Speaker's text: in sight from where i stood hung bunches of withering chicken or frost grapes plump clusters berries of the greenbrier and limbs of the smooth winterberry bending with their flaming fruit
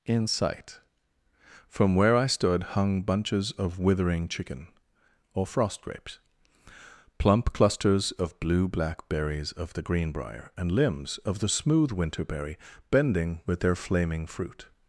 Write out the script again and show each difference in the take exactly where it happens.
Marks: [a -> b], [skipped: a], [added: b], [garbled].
in sight from where i stood hung bunches of withering chicken or frost grapes plump clusters [added: of blue black] berries of the greenbrier and limbs of the smooth winterberry bending with their flaming fruit